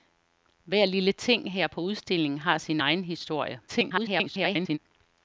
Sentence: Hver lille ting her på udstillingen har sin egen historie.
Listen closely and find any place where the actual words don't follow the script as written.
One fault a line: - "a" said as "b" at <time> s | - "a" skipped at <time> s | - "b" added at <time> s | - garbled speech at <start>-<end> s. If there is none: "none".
- garbled speech at 3.7-4.8 s